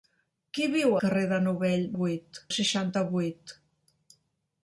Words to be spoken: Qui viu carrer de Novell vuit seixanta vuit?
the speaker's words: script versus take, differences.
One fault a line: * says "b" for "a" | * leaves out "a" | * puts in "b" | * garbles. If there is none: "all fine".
all fine